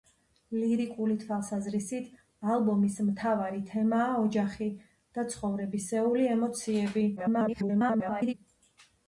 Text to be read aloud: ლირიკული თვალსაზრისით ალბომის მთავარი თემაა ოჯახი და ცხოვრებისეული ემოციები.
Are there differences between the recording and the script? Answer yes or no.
yes